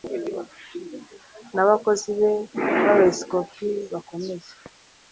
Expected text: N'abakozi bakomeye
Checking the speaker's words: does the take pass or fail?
fail